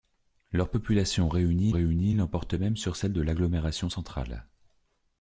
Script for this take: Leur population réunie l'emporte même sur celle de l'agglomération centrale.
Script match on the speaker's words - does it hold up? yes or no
no